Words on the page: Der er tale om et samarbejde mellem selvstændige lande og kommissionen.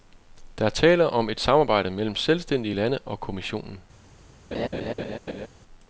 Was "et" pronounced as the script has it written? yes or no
yes